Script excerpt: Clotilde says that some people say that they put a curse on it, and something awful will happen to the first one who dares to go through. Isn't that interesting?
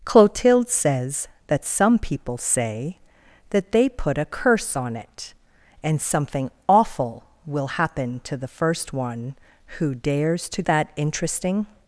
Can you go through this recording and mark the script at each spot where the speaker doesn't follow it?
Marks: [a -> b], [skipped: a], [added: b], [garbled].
Clotilde says that some people say that they put a curse on it, and something awful will happen to the first one who dares to [skipped: go through. Isn't] that interesting?